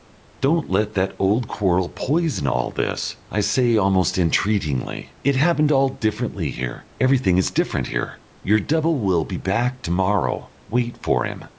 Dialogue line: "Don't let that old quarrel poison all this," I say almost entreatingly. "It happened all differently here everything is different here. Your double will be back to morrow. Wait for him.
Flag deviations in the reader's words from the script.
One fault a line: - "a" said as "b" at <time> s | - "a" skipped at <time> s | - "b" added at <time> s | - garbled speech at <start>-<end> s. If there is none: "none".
none